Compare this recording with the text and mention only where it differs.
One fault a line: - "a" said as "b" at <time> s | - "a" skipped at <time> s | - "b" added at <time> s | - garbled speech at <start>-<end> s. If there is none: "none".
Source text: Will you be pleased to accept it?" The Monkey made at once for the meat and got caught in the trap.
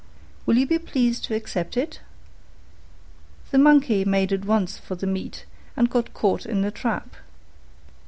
none